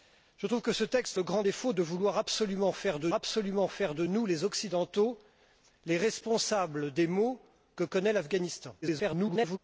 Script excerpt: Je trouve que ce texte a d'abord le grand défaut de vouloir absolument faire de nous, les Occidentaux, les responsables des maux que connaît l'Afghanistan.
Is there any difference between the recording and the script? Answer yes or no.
yes